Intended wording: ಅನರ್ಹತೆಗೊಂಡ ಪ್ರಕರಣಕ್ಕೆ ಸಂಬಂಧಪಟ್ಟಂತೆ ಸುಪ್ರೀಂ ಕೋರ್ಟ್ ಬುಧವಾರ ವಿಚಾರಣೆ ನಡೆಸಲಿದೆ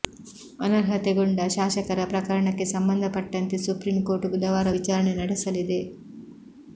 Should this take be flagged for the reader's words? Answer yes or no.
yes